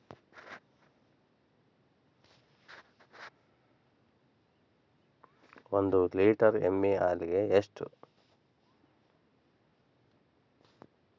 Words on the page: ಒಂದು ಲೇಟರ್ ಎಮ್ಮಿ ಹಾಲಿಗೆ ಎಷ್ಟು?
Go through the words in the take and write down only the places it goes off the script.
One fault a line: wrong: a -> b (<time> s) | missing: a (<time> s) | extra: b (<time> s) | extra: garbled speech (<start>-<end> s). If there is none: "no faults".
no faults